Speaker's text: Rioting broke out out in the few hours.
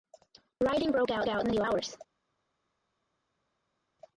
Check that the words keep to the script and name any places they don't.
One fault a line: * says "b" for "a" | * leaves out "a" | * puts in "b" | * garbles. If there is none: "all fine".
all fine